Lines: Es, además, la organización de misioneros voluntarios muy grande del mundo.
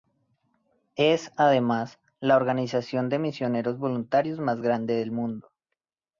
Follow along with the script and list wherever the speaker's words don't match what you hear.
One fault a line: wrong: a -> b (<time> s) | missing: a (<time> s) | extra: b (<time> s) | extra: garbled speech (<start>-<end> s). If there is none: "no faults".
wrong: muy -> más (4.4 s)